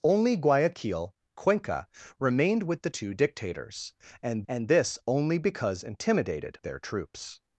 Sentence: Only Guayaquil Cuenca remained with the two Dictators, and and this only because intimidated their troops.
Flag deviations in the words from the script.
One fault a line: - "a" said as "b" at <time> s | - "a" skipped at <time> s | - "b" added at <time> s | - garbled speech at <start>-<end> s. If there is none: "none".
none